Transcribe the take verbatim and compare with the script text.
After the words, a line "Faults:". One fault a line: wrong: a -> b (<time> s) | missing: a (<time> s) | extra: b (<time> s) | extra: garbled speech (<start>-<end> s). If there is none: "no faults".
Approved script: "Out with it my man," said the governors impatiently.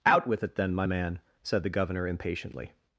"Out with it then, my man," said the governor impatiently.
Faults:
extra: then (0.6 s)
wrong: governors -> governor (1.7 s)